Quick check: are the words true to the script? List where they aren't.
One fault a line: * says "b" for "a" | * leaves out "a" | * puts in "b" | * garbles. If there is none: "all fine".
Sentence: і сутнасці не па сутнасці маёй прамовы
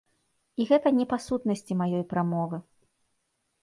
* says "гэта" for "сутнасці"